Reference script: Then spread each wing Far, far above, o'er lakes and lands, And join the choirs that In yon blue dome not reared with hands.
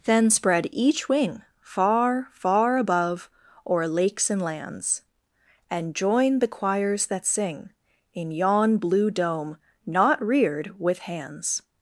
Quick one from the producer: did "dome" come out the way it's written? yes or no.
yes